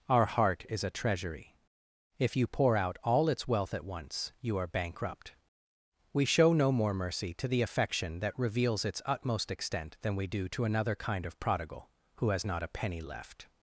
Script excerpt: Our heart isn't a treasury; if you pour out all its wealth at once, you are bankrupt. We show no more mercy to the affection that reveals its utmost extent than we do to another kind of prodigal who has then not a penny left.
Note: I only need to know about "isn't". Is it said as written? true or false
false